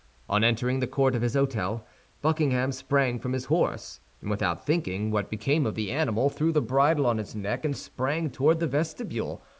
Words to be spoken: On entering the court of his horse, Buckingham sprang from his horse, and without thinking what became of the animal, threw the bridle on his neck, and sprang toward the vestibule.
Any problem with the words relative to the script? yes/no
yes